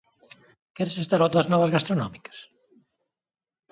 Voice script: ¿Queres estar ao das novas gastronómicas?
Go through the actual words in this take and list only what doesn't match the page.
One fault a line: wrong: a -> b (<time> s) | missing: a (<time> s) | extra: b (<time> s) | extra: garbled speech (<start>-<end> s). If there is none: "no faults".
no faults